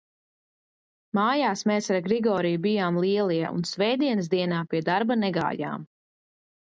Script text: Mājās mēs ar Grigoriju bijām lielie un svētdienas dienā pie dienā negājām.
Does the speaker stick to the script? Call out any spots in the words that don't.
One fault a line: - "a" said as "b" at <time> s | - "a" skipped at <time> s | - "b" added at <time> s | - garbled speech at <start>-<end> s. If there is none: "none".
- "dienā" said as "darba" at 4.9 s